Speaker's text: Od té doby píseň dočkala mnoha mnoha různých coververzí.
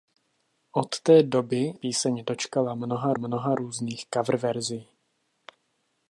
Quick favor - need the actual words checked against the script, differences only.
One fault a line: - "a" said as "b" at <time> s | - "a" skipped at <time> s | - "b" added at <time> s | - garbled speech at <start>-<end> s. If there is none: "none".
none